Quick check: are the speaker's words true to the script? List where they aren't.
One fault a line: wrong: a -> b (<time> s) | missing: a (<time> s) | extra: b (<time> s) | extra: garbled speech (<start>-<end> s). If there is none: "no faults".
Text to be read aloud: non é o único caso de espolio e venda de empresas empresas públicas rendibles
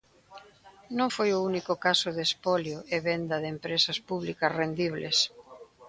wrong: é -> foi (1.1 s)
missing: empresas (4.0 s)